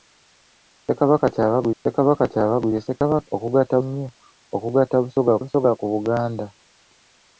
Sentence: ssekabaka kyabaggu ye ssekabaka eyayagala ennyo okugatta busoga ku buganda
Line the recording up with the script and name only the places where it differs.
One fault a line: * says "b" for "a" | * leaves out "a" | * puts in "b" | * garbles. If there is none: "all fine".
* puts in "ssekabaka kyabaggu"
* says "okugatta" for "eyayagala"
* puts in "busoga"